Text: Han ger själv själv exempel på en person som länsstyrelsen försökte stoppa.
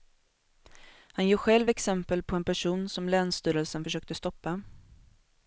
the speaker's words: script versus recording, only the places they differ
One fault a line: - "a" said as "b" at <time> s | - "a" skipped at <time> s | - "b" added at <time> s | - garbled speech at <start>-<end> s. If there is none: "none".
- "själv" skipped at 1.7 s